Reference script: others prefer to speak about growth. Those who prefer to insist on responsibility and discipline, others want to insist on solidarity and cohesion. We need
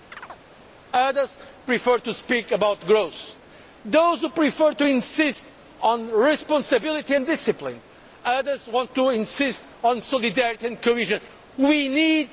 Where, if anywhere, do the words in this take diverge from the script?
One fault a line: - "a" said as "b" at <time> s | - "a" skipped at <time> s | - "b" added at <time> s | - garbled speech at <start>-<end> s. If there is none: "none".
none